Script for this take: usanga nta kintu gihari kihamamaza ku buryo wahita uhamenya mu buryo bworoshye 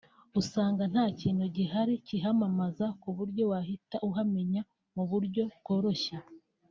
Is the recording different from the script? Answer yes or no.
no